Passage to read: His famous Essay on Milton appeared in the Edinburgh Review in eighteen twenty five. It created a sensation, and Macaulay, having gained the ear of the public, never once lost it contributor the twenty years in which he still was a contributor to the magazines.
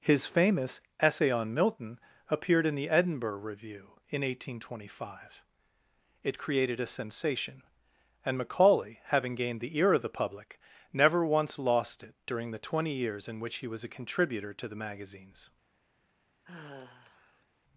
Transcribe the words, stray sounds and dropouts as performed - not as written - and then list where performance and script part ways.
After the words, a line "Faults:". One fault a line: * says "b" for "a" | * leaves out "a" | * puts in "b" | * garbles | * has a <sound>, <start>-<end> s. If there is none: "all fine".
His famous Essay on Milton appeared in the Edinburgh Review in eighteen twenty five. It created a sensation, and Macaulay, having gained the ear of the public, never once lost it during the twenty years in which he was a contributor to the magazines.
Faults:
* says "during" for "contributor"
* leaves out "still"
* has a sigh, 16.4-17.5 s